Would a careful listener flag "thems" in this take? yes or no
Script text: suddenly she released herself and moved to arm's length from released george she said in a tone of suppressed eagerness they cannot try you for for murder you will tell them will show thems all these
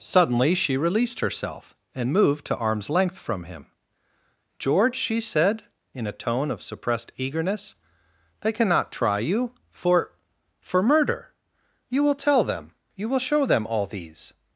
yes